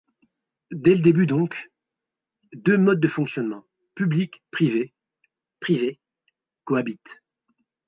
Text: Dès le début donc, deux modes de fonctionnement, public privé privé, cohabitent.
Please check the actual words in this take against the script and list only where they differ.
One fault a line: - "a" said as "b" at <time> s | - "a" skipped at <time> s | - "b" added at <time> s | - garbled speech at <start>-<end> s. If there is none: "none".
none